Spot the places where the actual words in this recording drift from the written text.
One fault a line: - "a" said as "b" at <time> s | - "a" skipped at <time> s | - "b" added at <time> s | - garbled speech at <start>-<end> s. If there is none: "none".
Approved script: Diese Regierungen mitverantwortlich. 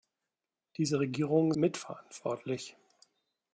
none